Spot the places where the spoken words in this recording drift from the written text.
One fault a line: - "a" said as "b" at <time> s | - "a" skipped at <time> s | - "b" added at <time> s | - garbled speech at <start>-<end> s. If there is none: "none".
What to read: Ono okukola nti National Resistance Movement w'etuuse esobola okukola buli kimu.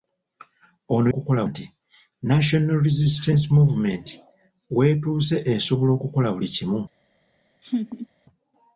none